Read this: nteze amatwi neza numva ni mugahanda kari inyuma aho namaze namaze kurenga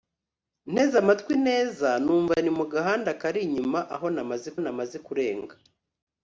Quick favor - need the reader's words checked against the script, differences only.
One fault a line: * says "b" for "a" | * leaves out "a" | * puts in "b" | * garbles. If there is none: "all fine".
all fine